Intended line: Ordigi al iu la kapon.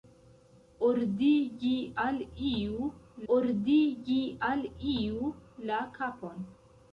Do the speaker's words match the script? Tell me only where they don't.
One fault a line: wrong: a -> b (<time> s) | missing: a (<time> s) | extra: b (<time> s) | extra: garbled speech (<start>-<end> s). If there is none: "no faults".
extra: ordigi al iu (3.3 s)